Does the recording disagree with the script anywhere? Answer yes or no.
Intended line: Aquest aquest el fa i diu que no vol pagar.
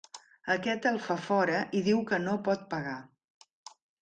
yes